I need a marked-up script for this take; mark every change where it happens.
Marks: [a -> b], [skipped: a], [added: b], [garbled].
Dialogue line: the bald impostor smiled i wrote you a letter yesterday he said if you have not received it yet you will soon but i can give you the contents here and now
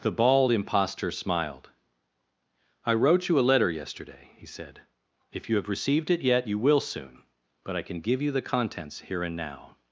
the bald impostor smiled i wrote you a letter yesterday he said if you have [skipped: not] received it yet you will soon but i can give you the contents here and now